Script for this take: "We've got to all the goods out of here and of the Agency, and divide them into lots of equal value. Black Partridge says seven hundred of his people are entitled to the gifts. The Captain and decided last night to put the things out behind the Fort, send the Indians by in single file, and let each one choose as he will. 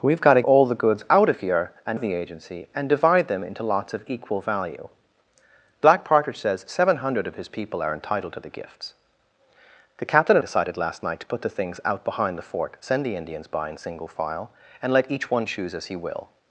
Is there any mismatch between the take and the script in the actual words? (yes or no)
no